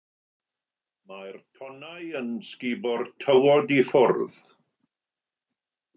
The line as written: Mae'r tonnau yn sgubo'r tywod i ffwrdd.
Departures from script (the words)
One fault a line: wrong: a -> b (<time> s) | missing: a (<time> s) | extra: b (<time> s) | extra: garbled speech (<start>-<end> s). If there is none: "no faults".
no faults